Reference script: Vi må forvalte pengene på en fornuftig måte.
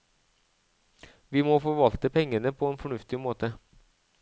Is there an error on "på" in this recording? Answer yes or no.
no